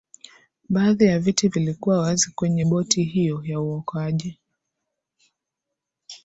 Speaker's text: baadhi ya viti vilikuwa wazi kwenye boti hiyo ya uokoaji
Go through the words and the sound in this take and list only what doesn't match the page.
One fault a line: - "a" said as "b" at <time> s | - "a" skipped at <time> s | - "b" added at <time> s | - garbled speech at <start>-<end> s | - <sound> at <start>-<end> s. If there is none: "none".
none